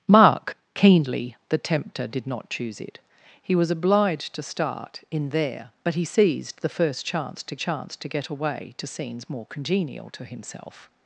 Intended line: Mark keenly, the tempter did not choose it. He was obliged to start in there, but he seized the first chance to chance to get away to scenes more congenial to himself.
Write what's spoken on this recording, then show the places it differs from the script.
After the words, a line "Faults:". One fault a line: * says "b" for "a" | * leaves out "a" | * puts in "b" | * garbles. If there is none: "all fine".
Mark keenly, the tempter did not choose it. He was obliged to start in there, but he seized the first chance to chance to get away to scenes more congenial to himself.
Faults:
all fine